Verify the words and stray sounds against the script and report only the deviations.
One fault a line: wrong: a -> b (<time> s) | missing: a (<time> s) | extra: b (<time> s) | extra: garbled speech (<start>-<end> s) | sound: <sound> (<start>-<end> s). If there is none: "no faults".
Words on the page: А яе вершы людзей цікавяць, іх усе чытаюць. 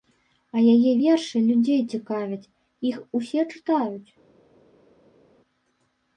no faults